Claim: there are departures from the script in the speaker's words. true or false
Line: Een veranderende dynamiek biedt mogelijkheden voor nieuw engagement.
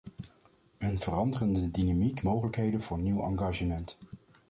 true